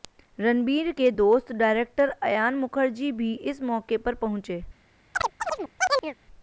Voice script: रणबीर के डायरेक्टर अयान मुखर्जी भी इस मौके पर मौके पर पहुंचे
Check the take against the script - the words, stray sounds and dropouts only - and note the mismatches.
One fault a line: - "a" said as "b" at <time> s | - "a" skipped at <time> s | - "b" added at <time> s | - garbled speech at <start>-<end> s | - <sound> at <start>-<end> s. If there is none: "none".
- "दोस्त" added at 1.1 s
- "मौके पर" skipped at 4.1 s
- chirp at 5.1-6.2 s